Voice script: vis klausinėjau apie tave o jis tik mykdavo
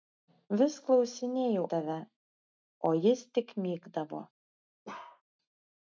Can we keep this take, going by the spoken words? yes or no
no